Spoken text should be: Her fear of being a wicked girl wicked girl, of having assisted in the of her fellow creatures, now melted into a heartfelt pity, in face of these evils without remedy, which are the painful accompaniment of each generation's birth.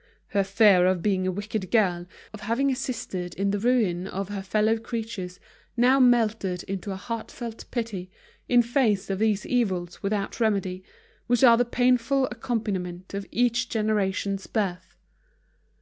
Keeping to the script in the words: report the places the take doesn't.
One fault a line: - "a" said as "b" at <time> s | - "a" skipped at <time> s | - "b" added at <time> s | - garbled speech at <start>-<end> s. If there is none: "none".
- "wicked girl" skipped at 2.1 s
- "ruin" added at 3.6 s